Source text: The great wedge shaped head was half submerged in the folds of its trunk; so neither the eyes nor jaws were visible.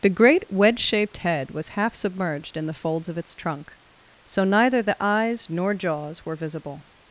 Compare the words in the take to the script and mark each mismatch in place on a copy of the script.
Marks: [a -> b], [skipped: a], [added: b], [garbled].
The great wedge shaped head was half submerged in the folds of its trunk; so neither the eyes nor jaws were visible.